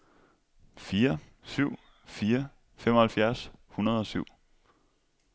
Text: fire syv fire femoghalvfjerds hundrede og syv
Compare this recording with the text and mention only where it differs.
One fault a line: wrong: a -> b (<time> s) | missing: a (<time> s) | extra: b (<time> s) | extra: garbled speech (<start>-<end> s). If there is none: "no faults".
no faults